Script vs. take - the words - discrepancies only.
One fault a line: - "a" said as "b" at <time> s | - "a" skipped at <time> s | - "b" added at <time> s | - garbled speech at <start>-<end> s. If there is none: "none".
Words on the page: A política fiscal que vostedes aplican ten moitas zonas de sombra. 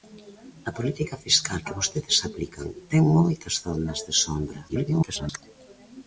- garbled speech at 4.7-5.4 s